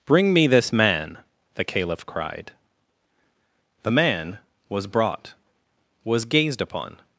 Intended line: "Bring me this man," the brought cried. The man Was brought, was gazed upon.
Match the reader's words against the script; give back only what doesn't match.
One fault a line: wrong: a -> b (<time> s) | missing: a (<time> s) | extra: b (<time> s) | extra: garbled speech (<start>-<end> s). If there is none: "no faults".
wrong: brought -> caliph (1.6 s)